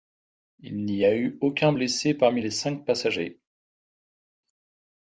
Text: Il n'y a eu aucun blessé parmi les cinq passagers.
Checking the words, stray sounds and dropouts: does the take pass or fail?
pass